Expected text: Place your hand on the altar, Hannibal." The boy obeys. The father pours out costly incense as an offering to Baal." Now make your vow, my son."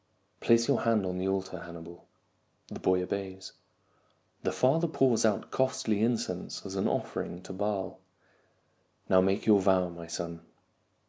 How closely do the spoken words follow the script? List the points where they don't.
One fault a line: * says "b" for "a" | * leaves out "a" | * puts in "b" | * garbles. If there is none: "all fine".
all fine